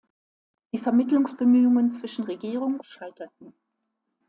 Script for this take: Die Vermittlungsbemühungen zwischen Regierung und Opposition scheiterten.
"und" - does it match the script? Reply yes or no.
no